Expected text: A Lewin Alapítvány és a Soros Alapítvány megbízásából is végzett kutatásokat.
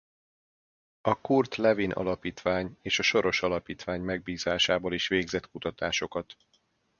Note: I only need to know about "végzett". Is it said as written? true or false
true